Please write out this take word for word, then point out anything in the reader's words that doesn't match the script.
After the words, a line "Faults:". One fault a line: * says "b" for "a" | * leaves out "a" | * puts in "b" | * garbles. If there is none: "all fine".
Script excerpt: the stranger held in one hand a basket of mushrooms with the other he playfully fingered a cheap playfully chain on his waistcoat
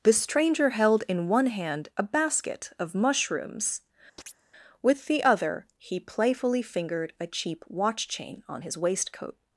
the stranger held in one hand a basket of mushrooms with the other he playfully fingered a cheap watch chain on his waistcoat
Faults:
* says "watch" for "playfully"